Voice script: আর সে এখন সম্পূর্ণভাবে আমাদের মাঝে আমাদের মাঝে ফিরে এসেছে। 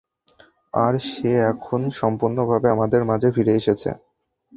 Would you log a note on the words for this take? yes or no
yes